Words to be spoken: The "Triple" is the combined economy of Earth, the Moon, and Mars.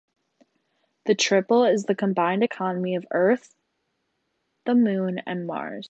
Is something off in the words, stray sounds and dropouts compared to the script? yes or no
no